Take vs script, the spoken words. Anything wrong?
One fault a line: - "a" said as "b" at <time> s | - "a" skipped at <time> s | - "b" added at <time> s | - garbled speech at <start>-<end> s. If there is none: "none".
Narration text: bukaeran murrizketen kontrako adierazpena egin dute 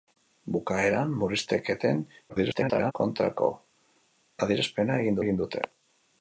- garbled speech at 2.3-2.9 s
- "egin" added at 5.2 s